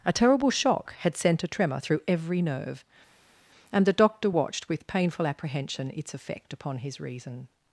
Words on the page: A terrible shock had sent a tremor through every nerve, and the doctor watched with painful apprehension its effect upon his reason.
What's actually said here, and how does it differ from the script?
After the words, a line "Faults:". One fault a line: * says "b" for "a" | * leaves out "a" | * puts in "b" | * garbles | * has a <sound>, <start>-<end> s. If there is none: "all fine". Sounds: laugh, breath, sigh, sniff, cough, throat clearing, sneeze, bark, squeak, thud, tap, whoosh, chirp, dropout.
A terrible shock had sent a tremor through every nerve, and the doctor watched with painful apprehension its effect upon his reason.
Faults:
all fine